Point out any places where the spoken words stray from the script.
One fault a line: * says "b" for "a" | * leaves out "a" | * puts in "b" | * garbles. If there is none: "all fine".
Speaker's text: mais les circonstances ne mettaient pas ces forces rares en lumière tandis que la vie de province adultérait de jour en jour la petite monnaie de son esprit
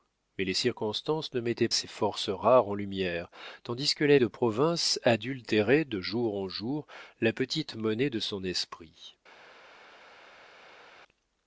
* leaves out "pas"
* leaves out "vie"